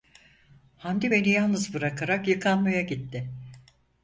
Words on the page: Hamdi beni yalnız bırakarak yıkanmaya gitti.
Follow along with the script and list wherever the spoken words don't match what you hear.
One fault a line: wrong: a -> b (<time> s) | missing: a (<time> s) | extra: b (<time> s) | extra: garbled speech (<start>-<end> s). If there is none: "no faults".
no faults